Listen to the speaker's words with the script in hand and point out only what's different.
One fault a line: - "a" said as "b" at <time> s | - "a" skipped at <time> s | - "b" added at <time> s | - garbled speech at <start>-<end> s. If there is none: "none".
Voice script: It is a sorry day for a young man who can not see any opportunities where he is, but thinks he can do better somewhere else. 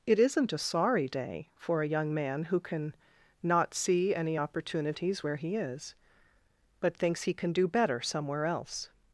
- "is" said as "isn't" at 0.2 s